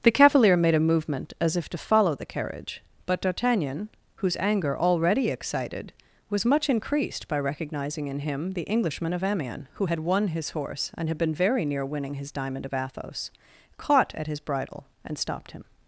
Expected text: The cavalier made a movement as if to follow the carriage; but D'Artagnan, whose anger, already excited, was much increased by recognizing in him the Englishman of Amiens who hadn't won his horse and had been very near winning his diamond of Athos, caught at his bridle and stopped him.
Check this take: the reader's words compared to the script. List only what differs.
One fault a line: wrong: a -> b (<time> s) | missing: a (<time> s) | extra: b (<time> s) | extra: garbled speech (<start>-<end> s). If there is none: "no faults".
wrong: hadn't -> had (9.8 s)